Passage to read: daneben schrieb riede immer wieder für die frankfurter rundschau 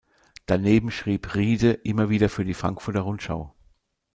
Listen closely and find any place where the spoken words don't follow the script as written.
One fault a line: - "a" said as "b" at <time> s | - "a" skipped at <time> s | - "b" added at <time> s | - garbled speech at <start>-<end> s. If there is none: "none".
none